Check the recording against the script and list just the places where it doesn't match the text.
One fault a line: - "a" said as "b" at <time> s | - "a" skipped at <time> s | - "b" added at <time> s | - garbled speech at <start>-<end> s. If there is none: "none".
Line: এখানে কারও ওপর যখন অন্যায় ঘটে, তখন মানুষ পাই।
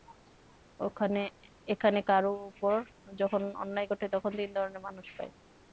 - "তিন ধরনের" added at 4.4 s